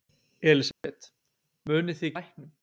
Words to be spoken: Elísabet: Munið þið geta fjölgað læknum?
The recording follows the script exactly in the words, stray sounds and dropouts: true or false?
false